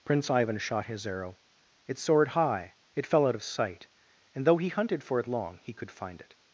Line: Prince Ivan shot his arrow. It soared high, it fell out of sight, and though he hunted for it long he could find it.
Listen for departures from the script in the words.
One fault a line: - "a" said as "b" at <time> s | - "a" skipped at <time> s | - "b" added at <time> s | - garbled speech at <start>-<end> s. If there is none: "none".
none